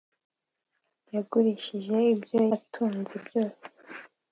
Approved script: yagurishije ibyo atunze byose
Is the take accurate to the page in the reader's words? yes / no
yes